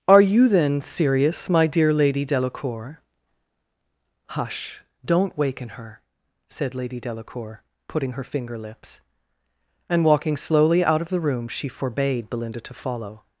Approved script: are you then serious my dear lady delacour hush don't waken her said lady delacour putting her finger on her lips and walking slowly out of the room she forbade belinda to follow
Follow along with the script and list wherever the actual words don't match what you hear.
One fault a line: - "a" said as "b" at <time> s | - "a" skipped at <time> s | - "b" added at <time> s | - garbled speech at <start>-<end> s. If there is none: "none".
- "on her" skipped at 8.6 s